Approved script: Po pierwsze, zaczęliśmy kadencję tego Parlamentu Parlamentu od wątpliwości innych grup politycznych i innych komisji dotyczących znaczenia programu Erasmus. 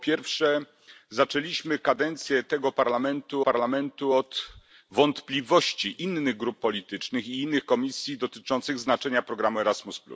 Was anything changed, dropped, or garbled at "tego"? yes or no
no